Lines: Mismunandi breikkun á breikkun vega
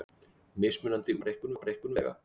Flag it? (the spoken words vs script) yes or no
no